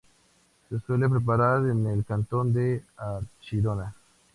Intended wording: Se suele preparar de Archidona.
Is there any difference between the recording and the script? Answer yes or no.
yes